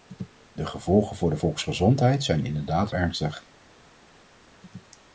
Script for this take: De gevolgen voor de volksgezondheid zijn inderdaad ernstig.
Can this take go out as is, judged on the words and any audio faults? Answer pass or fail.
pass